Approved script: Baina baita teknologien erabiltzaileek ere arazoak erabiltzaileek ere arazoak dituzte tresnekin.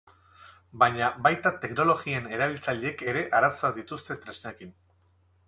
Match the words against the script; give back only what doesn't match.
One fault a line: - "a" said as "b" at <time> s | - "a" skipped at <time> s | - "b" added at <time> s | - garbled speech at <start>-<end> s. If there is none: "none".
- "erabiltzaileek ere arazoak" skipped at 3.8 s